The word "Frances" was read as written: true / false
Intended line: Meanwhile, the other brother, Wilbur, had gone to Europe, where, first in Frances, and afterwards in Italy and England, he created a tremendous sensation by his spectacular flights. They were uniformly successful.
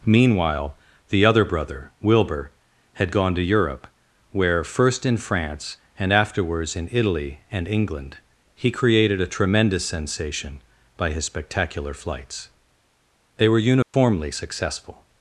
false